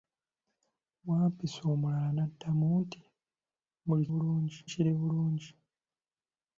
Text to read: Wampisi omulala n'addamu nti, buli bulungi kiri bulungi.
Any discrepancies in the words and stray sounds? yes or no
no